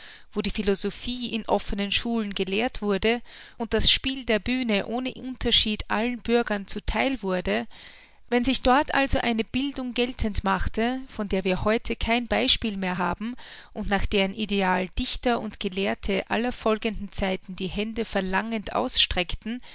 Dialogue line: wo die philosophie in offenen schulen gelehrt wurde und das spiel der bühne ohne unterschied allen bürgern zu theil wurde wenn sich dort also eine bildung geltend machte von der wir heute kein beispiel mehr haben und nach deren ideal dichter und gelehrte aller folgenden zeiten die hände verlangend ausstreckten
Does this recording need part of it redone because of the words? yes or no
no